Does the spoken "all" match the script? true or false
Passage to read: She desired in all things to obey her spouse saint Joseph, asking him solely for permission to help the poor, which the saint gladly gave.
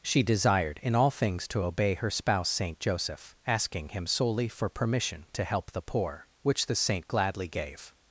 true